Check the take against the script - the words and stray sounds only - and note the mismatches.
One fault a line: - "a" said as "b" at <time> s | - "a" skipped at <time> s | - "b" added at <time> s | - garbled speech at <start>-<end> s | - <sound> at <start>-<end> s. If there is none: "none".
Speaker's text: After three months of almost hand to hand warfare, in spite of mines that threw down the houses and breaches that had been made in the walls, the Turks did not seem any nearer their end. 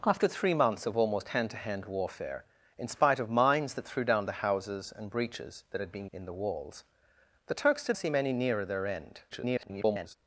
- "made" skipped at 6.1 s
- "not" skipped at 8.0 s
- garbled speech at 9.3-10.2 s